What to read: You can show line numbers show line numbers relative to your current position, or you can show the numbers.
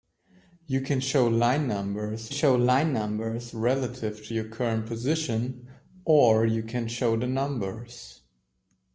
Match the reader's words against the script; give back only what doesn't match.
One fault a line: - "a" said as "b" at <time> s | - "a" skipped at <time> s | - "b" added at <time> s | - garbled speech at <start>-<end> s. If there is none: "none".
none